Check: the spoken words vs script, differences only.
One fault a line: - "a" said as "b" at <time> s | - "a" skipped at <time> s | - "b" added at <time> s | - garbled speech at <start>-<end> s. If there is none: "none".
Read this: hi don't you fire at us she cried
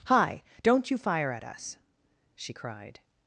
none